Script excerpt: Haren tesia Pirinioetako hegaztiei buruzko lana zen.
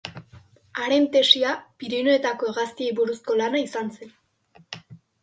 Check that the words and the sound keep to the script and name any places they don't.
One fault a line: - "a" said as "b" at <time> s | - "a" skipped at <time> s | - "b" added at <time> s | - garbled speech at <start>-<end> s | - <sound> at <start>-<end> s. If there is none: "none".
- "izan" added at 3.6 s